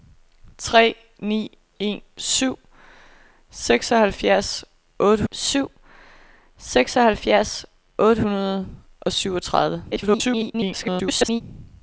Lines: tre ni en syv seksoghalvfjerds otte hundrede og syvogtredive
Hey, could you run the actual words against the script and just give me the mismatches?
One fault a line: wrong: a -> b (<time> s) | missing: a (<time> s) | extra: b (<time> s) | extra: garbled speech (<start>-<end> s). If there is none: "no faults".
extra: syv seksoghalvfjerds otte (5.3 s)
extra: garbled speech (9.9-11.4 s)